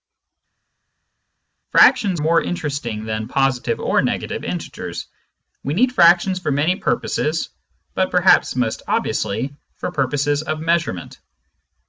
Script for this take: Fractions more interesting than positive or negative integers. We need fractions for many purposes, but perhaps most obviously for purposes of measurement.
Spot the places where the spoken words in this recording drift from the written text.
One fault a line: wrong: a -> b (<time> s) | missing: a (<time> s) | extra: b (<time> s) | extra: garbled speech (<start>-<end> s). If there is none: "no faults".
no faults